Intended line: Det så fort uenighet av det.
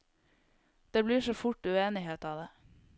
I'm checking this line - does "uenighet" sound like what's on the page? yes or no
yes